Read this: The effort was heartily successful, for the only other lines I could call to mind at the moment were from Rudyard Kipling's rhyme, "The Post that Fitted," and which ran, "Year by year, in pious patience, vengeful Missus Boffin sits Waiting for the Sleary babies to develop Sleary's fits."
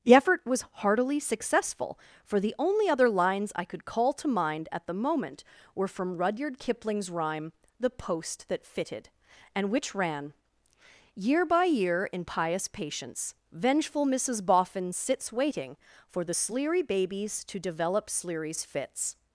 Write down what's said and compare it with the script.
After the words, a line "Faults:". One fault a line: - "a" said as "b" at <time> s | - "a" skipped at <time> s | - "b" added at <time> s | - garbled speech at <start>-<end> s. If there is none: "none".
The effort was heartily successful, for the only other lines I could call to mind at the moment were from Rudyard Kipling's rhyme, "The Post that Fitted," and which ran, "Year by year, in pious patience, vengeful Missus Boffin sits Waiting for the Sleary babies to develop Sleary's fits."
Faults:
none